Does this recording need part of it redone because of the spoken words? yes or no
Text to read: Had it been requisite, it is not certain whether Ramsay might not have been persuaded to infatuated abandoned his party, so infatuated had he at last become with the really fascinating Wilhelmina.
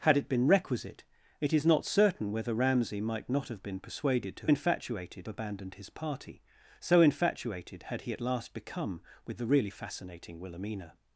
no